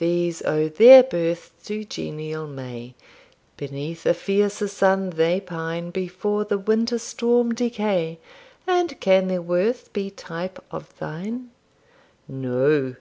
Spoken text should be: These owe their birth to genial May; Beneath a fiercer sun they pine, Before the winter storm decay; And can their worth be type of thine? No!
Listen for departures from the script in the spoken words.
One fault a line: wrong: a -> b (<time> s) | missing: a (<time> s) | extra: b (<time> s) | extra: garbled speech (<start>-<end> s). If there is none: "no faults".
no faults